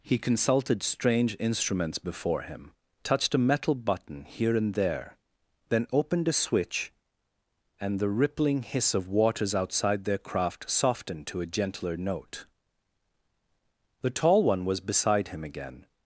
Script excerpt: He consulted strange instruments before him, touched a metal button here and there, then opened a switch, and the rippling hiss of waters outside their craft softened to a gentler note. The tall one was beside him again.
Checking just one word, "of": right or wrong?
right